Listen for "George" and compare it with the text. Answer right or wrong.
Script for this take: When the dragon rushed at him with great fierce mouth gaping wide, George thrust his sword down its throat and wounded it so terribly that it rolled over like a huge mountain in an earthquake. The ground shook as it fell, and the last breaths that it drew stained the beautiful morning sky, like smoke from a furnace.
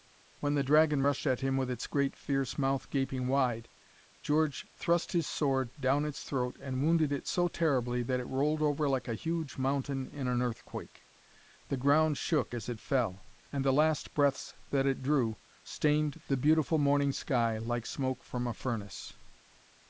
right